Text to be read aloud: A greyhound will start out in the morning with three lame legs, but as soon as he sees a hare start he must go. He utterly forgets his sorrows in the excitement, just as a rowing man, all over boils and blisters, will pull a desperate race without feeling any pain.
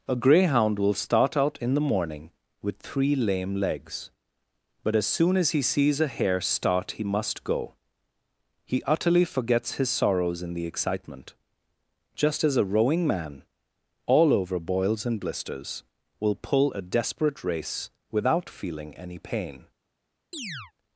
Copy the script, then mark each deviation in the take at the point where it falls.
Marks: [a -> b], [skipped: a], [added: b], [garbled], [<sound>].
A greyhound will start out in the morning with three lame legs, but as soon as he sees a hare start he must go. He utterly forgets his sorrows in the excitement, just as a rowing man, all over boils and blisters, will pull a desperate race without feeling any pain. [chirp]